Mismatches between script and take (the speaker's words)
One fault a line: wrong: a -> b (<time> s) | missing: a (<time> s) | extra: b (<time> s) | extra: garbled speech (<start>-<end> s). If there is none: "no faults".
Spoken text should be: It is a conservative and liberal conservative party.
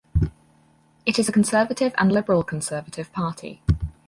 no faults